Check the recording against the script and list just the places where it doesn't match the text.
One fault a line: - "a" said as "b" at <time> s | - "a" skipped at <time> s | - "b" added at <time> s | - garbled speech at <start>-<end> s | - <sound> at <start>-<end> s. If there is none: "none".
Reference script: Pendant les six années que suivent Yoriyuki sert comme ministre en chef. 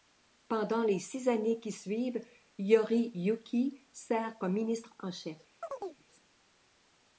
- "que" said as "qui" at 1.6 s
- chirp at 5.6-6.0 s